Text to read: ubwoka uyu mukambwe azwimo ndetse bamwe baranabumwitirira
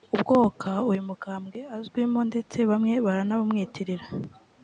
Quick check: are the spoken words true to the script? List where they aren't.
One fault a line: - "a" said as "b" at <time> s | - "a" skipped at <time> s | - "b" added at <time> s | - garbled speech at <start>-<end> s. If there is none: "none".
none